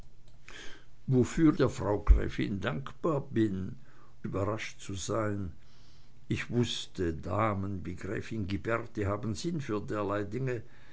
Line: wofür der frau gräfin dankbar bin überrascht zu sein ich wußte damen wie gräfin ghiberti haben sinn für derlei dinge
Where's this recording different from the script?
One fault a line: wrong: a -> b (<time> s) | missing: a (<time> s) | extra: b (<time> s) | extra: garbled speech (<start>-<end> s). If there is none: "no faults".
no faults